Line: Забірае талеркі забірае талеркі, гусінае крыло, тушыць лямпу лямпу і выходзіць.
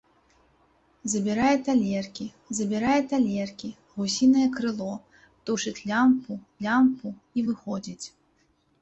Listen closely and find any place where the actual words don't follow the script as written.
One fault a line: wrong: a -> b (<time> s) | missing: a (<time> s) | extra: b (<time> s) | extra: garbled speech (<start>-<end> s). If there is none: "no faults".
no faults